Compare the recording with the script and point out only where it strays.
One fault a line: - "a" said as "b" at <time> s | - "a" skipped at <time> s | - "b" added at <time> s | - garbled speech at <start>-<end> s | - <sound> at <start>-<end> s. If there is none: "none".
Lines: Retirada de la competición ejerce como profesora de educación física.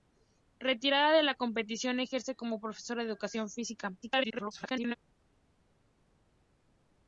- garbled speech at 4.0-5.0 s